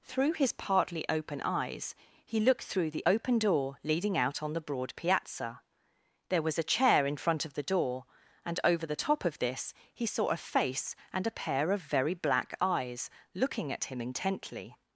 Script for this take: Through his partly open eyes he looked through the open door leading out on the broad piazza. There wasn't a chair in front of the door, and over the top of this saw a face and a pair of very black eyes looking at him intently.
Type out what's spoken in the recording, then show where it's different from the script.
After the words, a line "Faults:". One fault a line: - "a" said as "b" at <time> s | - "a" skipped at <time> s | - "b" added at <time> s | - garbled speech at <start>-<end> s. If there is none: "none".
Through his partly open eyes he looked through the open door leading out on the broad piazza. There was a chair in front of the door, and over the top of this he saw a face and a pair of very black eyes looking at him intently.
Faults:
- "wasn't" said as "was" at 6.4 s
- "he" added at 9.9 s